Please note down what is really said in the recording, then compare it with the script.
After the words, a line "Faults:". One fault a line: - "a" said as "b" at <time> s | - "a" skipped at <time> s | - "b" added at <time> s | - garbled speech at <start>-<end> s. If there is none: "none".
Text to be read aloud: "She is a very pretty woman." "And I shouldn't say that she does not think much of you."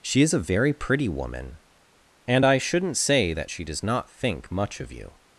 "She is a very pretty woman." "And I shouldn't say that she does not think much of you."
Faults:
none